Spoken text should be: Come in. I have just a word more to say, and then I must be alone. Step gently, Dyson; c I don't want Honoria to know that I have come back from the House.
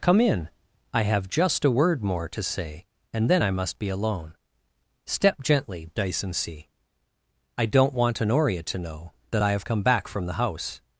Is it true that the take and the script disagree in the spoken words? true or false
false